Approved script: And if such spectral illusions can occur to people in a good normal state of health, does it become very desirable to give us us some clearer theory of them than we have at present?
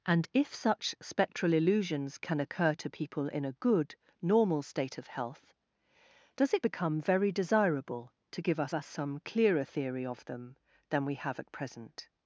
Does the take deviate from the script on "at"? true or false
false